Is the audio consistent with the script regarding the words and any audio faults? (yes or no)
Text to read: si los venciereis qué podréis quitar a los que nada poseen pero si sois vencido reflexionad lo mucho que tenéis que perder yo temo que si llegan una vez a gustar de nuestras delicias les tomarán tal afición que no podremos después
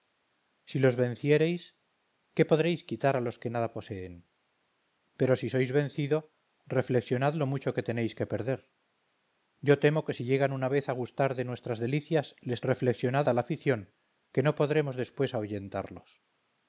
no